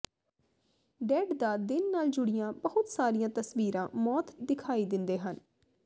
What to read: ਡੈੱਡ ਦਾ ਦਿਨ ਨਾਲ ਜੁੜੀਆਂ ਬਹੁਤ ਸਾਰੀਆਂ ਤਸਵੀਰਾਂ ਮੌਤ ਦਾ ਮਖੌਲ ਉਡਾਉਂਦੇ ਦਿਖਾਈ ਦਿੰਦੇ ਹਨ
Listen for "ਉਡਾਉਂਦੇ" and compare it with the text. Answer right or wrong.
wrong